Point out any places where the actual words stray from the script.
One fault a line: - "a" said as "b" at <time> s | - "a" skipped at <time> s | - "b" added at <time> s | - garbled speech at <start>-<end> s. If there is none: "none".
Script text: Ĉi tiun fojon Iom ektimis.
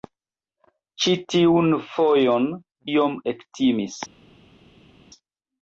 none